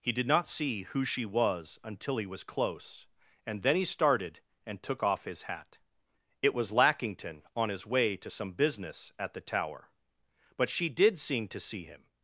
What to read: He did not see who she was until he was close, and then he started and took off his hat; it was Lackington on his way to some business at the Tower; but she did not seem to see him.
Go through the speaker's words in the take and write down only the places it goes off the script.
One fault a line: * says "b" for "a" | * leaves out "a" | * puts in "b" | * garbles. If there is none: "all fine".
* leaves out "not"